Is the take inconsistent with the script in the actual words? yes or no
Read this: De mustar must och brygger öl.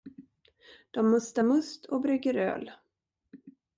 no